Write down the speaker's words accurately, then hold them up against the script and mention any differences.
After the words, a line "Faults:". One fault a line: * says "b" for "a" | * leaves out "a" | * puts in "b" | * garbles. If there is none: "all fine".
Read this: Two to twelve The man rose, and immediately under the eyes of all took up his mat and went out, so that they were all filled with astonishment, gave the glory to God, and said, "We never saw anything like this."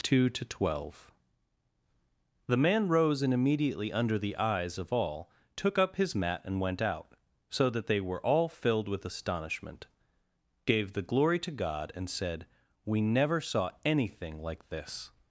Two to twelve The man rose, and immediately under the eyes of all took up his mat and went out, so that they were all filled with astonishment, gave the glory to God, and said, "We never saw anything like this."
Faults:
all fine